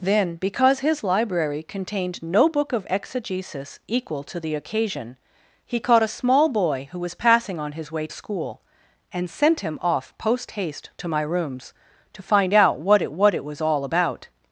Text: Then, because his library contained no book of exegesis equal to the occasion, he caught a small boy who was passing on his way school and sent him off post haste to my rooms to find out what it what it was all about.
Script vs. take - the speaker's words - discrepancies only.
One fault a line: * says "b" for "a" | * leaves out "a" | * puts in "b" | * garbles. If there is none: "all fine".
all fine